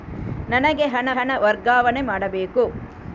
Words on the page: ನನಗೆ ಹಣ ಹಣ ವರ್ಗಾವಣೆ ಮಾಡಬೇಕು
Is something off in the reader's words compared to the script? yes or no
no